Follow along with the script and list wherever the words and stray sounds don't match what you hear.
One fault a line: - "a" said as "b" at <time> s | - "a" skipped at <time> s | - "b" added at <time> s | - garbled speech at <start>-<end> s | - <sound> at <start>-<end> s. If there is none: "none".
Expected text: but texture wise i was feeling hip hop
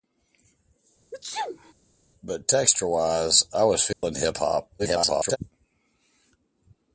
- sneeze at 1.1-1.7 s
- dropout at 3.9-4.0 s
- garbled speech at 4.8-5.4 s